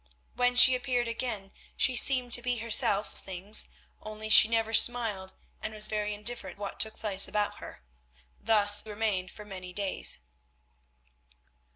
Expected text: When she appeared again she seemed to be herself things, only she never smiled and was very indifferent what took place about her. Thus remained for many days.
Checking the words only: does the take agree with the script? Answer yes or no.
yes